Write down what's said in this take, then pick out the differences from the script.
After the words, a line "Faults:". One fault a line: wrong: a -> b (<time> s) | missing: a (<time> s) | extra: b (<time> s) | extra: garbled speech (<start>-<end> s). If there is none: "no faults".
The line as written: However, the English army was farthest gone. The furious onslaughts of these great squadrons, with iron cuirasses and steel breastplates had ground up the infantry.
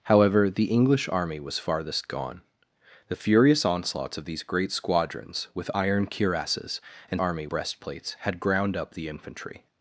However, the English army was farthest gone. The furious onslaughts of these great squadrons, with iron cuirasses and army breastplates had ground up the infantry.
Faults:
wrong: steel -> army (7.2 s)